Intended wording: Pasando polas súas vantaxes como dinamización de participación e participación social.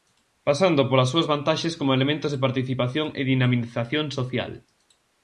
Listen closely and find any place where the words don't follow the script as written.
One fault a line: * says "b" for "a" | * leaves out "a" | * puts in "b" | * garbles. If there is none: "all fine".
* says "elementos" for "dinamización"
* says "dinamización" for "participación"